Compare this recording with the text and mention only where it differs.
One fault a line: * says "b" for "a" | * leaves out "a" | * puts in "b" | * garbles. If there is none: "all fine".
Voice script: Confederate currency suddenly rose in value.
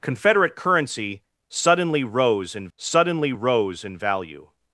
* puts in "suddenly rose in"